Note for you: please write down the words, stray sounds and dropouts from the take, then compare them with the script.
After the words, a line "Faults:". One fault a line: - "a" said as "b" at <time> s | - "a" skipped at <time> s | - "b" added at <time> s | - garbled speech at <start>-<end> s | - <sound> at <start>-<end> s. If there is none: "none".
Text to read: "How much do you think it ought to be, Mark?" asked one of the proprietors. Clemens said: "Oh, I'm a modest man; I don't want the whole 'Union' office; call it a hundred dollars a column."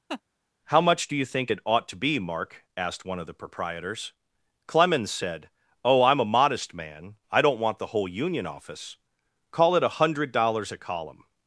"How much do you think it ought to be, Mark?" asked one of the proprietors. Clemens said: "Oh, I'm a modest man; I don't want the whole 'Union' office; call it a hundred dollars a column."
Faults:
- laugh at 0.1-0.2 s